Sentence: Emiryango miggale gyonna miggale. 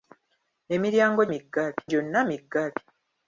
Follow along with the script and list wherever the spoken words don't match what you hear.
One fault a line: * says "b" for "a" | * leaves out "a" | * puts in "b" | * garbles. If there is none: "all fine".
all fine